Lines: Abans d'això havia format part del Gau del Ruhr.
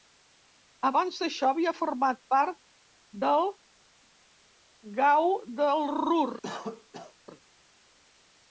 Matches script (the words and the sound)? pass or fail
fail